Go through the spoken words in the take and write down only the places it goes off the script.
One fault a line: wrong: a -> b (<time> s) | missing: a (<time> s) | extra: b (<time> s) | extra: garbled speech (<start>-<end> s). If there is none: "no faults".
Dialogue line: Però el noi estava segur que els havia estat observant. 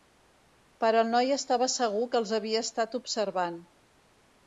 no faults